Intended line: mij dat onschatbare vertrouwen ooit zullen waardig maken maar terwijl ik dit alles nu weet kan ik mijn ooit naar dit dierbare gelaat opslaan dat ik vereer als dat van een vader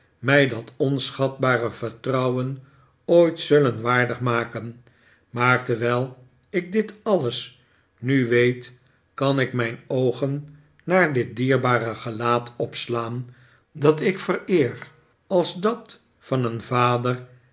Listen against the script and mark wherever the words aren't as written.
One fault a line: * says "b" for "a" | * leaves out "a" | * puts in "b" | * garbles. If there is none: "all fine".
* says "oogen" for "ooit"